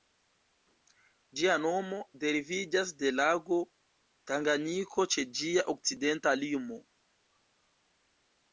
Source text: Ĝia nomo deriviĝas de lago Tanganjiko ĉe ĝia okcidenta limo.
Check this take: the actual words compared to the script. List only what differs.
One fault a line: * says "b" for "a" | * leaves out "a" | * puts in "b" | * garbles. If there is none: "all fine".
all fine